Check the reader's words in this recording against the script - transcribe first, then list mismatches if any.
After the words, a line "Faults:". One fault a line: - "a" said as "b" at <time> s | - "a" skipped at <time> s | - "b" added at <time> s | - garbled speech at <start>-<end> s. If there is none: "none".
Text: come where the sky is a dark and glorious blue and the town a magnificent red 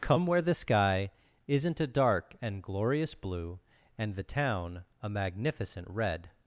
come where the sky isn't a dark and glorious blue and the town a magnificent red
Faults:
- "is" said as "isn't" at 1.5 s